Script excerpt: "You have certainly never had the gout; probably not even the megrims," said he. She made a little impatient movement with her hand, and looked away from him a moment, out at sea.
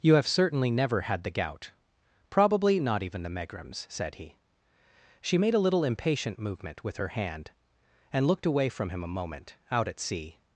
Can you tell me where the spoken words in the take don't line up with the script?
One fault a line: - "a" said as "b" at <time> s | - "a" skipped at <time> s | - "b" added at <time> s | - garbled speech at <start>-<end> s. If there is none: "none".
none